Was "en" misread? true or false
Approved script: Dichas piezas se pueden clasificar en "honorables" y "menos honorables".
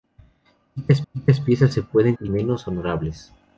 true